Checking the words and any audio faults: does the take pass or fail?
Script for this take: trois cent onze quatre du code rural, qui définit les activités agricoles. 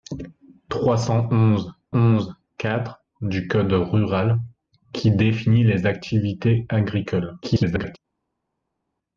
fail